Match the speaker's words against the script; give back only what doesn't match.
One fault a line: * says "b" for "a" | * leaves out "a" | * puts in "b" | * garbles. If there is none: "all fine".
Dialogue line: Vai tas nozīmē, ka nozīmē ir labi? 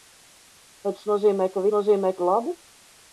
all fine